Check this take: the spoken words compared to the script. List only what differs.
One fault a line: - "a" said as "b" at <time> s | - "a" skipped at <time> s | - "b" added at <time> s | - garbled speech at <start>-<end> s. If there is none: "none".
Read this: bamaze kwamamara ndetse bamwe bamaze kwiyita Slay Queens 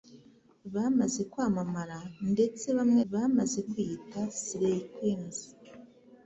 none